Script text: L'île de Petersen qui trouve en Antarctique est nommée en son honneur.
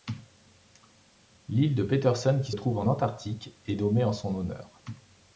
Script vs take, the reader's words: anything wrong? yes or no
no